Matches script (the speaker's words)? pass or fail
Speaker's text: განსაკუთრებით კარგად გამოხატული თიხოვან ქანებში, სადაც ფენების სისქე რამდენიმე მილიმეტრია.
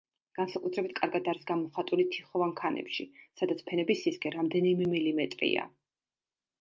fail